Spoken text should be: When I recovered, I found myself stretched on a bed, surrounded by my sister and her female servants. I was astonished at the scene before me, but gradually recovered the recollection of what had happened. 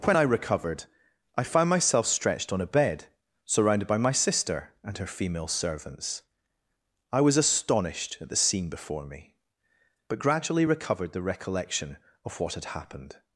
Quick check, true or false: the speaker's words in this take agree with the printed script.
true